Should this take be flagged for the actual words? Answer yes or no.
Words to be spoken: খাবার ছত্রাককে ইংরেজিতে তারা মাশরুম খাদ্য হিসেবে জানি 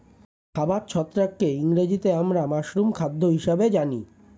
yes